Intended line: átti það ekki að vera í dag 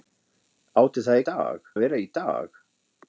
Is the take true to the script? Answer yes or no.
no